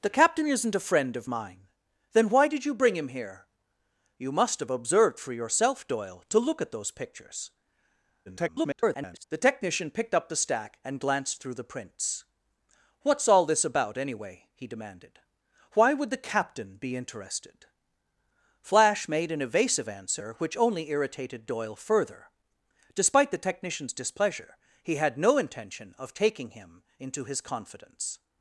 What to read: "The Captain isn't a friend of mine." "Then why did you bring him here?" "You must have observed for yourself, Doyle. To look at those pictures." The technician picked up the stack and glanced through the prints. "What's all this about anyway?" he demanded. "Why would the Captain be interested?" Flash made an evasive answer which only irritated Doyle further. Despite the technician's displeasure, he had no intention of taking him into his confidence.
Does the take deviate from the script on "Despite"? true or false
false